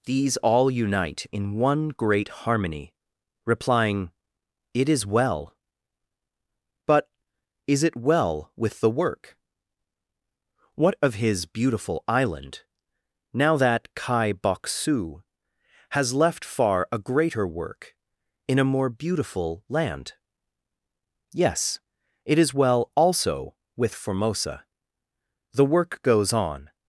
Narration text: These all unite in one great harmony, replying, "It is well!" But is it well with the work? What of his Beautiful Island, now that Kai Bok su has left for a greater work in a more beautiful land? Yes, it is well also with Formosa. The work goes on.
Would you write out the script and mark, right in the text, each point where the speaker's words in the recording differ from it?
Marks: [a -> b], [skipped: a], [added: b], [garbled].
These all unite in one great harmony, replying, "It is well!" But is it well with the work? What of his Beautiful Island, now that Kai Bok su has left [for -> far] a greater work in a more beautiful land? Yes, it is well also with Formosa. The work goes on.